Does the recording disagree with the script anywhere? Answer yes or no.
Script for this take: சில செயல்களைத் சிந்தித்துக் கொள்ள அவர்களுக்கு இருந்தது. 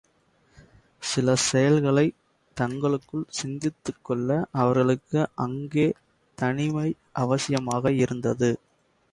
yes